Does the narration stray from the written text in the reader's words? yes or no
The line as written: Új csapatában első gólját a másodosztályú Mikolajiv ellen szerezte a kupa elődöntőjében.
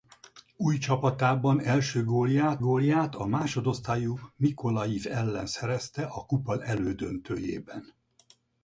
yes